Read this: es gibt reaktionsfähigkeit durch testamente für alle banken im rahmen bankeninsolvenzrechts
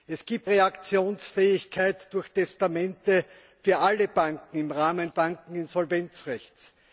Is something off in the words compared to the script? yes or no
no